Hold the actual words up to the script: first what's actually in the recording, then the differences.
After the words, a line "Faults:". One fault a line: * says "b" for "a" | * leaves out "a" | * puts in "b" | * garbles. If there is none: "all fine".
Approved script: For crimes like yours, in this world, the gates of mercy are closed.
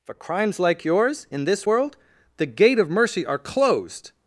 For crimes like yours, in this world, the gate of mercy are closed.
Faults:
* says "gate" for "gates"